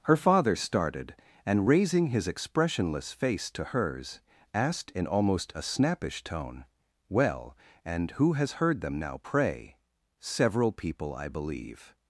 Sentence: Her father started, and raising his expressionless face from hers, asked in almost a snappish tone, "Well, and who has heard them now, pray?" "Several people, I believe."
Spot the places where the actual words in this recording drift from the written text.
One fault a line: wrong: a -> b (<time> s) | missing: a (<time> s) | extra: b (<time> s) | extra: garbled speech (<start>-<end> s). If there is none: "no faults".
wrong: from -> to (3.5 s)